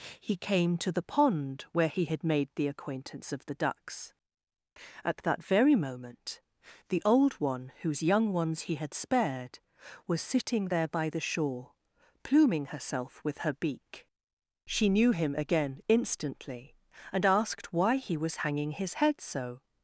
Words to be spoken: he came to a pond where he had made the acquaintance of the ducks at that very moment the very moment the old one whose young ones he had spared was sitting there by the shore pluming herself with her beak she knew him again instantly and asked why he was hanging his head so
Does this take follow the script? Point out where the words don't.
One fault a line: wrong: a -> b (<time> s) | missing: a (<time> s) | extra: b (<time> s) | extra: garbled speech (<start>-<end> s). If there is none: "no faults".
wrong: a -> the (0.9 s)
missing: very moment the (7.0 s)